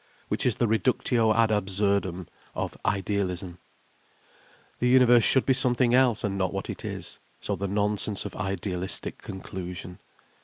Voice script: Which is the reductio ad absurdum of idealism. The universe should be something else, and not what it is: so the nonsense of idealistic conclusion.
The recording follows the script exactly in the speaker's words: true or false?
true